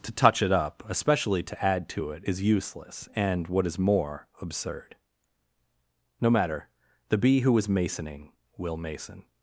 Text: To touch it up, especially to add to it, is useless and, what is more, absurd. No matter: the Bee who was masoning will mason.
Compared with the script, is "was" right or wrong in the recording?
wrong